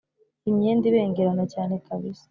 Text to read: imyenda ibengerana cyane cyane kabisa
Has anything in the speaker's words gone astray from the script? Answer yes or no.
yes